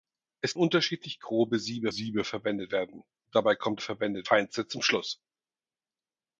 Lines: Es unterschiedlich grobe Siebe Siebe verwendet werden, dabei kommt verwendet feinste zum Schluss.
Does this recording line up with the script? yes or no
yes